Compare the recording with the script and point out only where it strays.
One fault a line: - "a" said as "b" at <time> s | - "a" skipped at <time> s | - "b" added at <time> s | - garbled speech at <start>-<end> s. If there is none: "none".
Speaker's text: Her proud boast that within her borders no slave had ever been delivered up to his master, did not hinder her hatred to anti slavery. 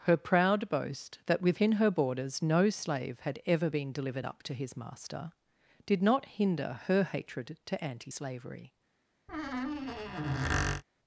none